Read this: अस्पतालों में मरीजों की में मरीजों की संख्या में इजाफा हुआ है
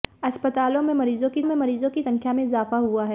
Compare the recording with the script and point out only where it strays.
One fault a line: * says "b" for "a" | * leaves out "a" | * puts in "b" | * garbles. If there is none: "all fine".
all fine